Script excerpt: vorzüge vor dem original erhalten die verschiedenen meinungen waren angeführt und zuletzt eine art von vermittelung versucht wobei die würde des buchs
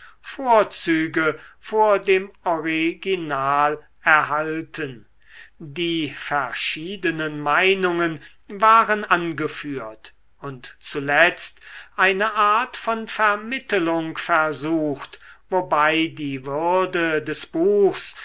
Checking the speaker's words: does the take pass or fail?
pass